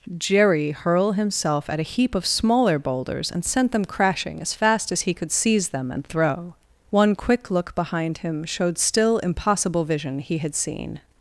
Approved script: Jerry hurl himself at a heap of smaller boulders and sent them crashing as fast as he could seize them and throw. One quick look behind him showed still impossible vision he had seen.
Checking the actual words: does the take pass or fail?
pass